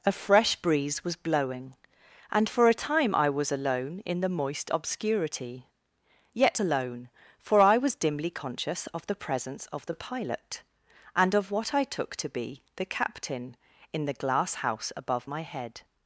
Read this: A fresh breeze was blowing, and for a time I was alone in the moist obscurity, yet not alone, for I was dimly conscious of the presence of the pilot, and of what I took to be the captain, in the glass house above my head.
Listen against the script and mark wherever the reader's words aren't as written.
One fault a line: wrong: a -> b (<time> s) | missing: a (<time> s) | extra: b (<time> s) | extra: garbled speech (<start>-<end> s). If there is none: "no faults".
missing: not (6.6 s)